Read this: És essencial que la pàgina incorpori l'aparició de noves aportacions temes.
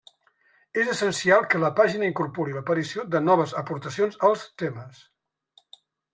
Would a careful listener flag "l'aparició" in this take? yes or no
no